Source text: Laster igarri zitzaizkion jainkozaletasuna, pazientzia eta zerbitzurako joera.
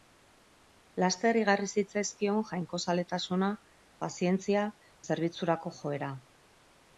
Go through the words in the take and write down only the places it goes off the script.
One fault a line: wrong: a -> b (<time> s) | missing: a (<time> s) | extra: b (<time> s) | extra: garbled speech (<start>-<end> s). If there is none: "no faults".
missing: eta (4.7 s)